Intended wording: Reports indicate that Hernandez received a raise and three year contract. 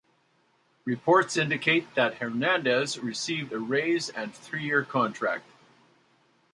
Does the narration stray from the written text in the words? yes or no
no